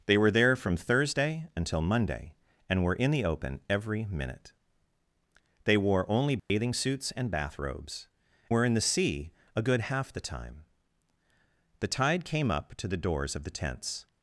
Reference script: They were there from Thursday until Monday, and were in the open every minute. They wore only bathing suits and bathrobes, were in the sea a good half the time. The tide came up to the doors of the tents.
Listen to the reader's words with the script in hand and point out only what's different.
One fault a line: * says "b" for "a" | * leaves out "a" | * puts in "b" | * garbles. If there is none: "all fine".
all fine